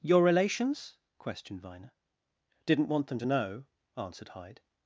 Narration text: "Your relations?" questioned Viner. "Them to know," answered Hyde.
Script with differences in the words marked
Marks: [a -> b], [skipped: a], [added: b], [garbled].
"Your relations?" questioned Viner. [added: Didn't want] "Them to know," answered Hyde.